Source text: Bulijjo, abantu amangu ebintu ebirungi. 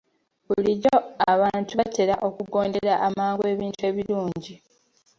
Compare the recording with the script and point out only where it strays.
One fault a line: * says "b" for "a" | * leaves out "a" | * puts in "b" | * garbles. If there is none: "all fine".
* puts in "batera okugondera"